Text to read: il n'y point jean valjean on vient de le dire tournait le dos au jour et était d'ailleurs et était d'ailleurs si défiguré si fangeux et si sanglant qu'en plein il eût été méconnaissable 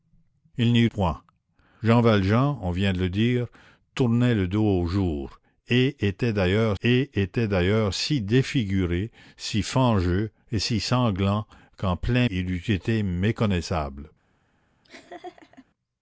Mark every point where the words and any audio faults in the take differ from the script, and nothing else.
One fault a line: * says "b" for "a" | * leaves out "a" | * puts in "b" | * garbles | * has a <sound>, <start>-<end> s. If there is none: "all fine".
* has a laugh, 14.8-15.7 s